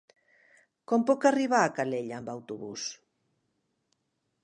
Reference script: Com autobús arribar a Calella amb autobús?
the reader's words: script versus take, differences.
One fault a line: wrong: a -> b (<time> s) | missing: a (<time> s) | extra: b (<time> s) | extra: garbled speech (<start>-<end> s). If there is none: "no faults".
wrong: autobús -> puc (1.1 s)